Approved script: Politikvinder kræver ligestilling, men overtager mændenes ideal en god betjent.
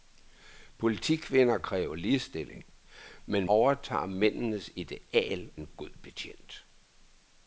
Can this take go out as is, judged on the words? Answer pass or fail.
pass